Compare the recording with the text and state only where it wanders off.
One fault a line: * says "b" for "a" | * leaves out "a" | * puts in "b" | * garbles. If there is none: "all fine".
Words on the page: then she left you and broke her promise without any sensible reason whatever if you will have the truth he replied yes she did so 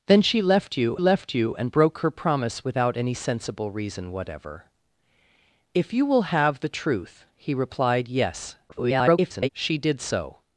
* puts in "left you"
* garbles